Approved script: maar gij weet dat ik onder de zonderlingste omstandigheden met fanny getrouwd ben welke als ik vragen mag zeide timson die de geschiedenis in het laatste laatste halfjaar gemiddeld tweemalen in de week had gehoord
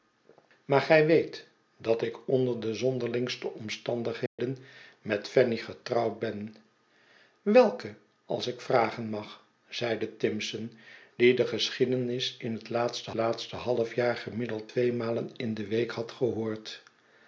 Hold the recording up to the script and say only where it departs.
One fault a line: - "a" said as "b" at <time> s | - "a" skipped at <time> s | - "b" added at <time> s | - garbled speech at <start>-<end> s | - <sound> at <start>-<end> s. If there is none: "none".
- dropout at 4.3-4.4 s